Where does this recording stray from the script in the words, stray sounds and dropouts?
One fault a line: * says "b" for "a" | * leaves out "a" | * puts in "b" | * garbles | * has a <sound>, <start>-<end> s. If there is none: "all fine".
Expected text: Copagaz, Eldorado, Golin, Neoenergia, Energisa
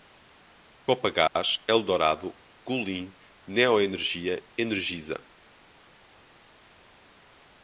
all fine